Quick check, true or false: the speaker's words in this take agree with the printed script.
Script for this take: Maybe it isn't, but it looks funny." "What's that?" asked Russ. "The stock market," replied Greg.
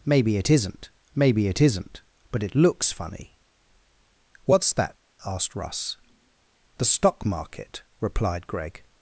false